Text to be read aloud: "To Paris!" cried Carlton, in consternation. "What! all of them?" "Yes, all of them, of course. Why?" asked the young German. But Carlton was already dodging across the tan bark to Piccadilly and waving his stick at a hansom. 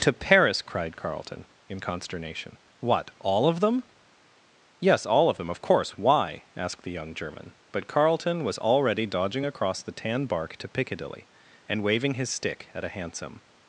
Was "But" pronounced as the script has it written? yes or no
yes